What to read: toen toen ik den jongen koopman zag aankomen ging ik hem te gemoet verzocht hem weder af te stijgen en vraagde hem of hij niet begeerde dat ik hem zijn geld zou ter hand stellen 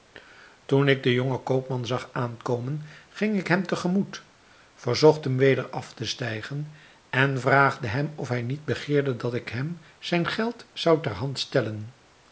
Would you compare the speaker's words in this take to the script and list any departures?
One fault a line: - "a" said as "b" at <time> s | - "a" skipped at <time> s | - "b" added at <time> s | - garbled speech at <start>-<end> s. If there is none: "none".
- "toen" skipped at 0.9 s